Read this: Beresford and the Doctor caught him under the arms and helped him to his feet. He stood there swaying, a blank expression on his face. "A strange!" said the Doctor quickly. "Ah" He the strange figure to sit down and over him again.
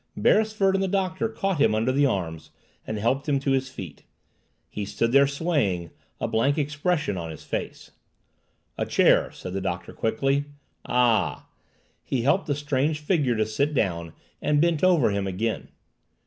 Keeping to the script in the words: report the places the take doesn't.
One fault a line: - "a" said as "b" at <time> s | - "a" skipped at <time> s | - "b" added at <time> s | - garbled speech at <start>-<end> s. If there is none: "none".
- "strange" said as "chair" at 8.8 s
- "helped" added at 12.2 s
- "bent" added at 14.6 s